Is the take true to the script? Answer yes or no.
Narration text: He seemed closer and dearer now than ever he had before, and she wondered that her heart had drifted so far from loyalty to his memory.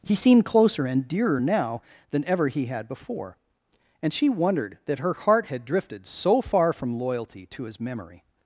yes